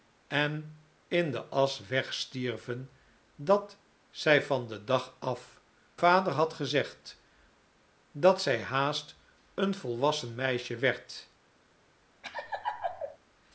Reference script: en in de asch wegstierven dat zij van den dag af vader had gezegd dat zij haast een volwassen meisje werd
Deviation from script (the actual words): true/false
false